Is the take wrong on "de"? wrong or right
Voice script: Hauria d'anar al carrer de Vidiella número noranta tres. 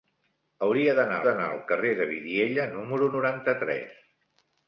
right